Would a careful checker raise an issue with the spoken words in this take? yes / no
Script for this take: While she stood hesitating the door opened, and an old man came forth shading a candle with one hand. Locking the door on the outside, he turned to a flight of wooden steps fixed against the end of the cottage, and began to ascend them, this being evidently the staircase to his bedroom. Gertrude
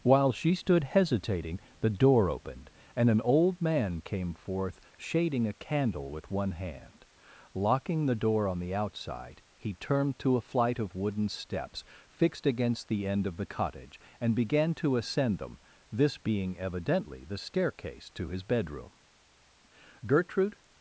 no